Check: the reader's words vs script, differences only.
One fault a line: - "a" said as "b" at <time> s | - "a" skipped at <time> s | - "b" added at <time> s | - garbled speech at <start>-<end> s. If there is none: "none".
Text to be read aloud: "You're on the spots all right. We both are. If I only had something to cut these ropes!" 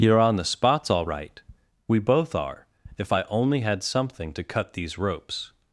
none